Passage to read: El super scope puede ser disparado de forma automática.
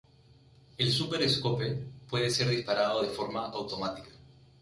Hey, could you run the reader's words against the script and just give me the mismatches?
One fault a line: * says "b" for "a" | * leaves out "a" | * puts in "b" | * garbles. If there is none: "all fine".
all fine